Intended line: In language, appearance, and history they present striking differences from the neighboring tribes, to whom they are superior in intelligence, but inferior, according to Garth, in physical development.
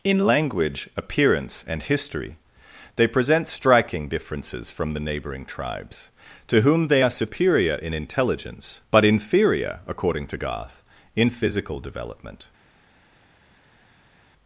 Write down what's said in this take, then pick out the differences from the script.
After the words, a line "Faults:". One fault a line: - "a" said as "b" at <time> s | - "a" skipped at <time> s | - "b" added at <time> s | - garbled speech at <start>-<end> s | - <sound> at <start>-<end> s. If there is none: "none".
In language, appearance, and history they present striking differences from the neighboring tribes, to whom they are superior in intelligence, but inferior, according to Garth, in physical development.
Faults:
none